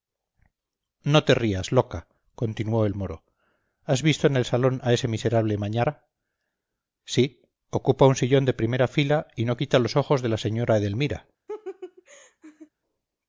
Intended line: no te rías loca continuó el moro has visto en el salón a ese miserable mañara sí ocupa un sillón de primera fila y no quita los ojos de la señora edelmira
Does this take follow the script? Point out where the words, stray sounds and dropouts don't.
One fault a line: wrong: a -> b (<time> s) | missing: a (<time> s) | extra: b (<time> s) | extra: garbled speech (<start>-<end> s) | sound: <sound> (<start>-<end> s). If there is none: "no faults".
sound: laugh (11.5-12.7 s)